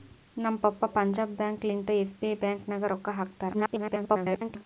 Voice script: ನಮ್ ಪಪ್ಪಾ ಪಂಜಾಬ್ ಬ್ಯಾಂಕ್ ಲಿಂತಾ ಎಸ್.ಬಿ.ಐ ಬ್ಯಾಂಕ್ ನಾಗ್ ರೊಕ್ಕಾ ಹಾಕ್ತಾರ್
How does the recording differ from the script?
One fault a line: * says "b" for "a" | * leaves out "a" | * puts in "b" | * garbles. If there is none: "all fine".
* garbles